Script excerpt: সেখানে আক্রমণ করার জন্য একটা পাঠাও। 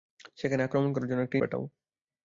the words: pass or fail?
pass